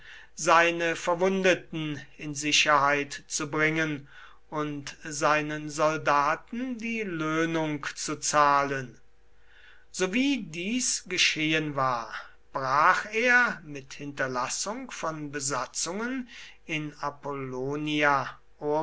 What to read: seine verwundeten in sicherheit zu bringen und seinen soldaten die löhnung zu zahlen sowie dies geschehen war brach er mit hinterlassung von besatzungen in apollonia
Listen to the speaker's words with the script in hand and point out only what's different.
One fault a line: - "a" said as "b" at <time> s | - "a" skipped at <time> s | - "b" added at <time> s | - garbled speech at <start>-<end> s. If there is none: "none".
none